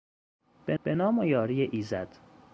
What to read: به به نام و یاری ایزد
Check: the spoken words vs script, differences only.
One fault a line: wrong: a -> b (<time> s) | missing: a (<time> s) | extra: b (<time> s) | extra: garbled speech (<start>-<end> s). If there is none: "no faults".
no faults